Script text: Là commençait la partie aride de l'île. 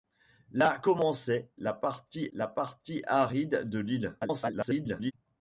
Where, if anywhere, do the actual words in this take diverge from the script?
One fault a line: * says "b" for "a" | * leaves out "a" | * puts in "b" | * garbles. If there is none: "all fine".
* puts in "la partie"
* garbles